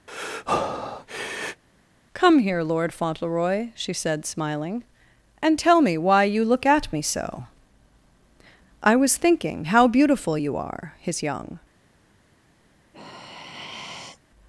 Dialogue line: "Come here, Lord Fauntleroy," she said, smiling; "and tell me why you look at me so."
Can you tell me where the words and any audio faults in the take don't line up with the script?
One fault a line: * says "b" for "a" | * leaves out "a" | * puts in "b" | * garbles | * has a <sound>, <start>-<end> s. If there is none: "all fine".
* has a breath, 0.1-1.6 s
* puts in "I was thinking how beautiful you are his young"
* has a sigh, 12.9-14.2 s